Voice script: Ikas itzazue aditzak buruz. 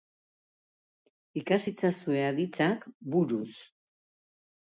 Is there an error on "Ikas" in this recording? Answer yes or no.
no